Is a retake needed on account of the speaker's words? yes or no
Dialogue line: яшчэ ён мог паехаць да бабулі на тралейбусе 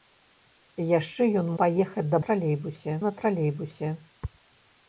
yes